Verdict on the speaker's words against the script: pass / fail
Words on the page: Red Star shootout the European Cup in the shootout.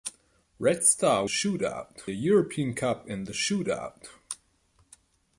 pass